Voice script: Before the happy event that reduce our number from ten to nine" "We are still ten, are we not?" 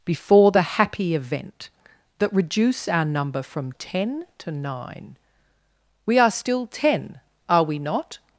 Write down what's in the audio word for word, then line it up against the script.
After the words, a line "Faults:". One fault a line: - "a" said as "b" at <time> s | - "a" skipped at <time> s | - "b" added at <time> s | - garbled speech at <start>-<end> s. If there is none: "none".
Before the happy event that reduce our number from ten to nine" "We are still ten, are we not?"
Faults:
none